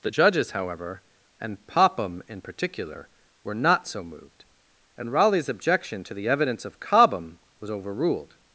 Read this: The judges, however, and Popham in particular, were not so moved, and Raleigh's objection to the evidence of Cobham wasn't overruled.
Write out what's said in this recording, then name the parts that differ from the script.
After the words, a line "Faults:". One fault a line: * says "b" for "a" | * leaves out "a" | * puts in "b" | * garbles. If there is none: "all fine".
The judges, however, and Popham in particular, were not so moved, and Raleigh's objection to the evidence of Cobham was overruled.
Faults:
* says "was" for "wasn't"